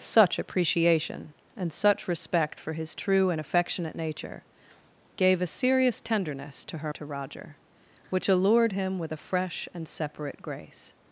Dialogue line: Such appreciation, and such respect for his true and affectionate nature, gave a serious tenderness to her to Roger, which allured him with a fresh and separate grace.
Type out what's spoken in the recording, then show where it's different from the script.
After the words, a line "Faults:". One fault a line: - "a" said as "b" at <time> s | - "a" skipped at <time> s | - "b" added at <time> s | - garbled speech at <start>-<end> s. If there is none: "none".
Such appreciation, and such respect for his true and affectionate nature, gave a serious tenderness to her to Roger, which allured him with a fresh and separate grace.
Faults:
none